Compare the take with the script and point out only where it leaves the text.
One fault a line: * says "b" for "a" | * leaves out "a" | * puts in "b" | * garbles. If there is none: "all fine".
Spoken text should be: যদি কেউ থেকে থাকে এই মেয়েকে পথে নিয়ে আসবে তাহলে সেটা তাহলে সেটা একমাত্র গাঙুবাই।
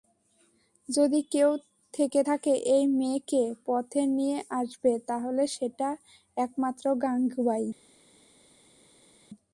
* leaves out "তাহলে সেটা"